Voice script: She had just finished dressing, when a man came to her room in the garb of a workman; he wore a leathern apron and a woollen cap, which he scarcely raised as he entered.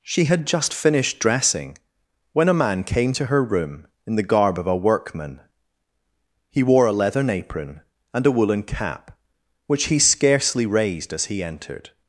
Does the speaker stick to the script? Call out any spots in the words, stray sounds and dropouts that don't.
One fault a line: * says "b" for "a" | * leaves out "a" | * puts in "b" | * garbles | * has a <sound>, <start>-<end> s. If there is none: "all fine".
all fine